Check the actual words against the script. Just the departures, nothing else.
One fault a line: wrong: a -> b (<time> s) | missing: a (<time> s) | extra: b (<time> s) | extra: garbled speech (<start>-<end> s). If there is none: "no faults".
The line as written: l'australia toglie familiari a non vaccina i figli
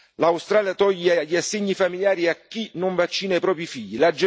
extra: gli assegni (1.2 s)
extra: chi (2.4 s)
extra: propri (3.4 s)